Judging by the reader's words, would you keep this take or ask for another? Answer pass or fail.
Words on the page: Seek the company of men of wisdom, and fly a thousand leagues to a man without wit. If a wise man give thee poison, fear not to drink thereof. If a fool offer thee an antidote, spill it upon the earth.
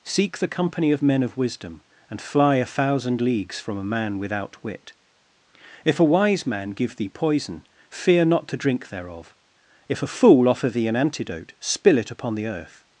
fail